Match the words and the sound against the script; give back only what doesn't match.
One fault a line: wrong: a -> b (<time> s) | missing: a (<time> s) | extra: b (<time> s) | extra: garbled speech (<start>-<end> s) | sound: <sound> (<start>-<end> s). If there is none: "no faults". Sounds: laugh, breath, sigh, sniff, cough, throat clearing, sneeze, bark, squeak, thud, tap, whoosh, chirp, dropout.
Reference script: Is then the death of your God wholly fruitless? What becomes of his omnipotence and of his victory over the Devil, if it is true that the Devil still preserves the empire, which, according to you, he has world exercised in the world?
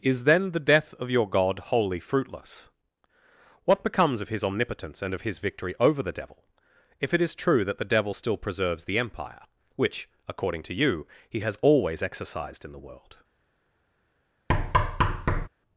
wrong: world -> always (11.6 s)
sound: thud (14.5-15.5 s)